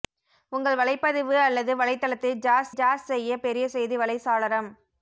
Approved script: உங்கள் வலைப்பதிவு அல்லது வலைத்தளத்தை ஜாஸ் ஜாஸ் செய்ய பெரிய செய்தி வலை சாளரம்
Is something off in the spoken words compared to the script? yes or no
no